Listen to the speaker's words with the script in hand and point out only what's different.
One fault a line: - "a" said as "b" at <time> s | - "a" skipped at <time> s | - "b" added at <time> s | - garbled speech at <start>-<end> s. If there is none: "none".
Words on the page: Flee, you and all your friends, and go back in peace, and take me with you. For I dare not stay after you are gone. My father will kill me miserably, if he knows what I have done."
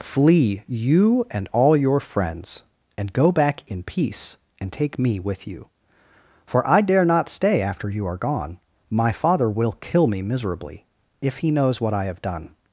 none